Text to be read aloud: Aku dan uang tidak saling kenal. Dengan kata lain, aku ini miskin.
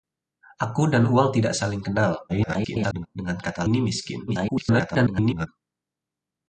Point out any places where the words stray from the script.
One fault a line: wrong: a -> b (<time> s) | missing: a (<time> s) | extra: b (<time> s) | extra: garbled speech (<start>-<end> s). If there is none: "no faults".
extra: garbled speech (2.3-3.1 s)
missing: lain aku (3.6 s)
extra: garbled speech (4.3-5.5 s)